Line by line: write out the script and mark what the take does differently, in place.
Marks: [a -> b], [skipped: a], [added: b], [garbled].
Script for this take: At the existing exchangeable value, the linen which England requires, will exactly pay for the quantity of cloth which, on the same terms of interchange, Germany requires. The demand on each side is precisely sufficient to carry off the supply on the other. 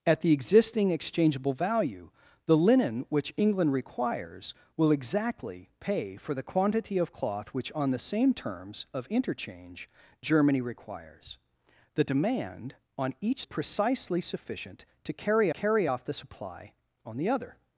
At the existing exchangeable value, the linen which England requires, will exactly pay for the quantity of cloth which, on the same terms of interchange, Germany requires. The demand on each [skipped: side is] precisely sufficient to carry [added: carry] off the supply on the other.